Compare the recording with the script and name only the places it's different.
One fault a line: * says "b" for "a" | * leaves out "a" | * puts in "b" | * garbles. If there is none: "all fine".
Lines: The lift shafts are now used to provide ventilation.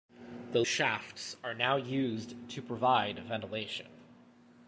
* leaves out "lift"